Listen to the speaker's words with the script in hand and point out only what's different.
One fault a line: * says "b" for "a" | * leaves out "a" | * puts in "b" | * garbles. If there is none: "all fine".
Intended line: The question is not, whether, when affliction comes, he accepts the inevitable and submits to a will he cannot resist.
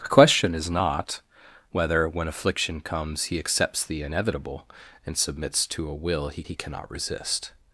* puts in "he"